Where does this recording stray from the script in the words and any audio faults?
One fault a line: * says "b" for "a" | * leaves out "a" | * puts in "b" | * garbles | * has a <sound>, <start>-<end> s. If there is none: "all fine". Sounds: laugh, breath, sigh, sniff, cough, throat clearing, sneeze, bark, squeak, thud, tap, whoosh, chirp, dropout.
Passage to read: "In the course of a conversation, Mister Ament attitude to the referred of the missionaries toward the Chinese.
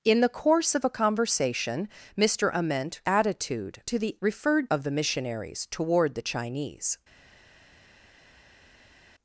all fine